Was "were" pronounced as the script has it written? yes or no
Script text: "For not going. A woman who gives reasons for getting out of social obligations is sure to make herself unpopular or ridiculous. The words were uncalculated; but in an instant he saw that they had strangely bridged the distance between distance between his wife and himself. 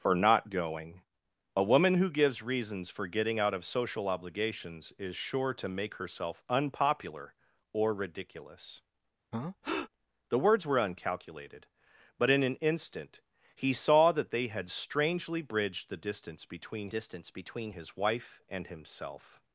yes